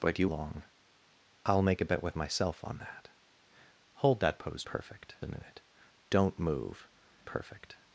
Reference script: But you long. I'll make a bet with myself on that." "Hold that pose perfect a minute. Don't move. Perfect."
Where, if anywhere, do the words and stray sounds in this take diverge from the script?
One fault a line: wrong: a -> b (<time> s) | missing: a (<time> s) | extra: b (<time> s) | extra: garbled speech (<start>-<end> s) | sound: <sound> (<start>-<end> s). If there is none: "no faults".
no faults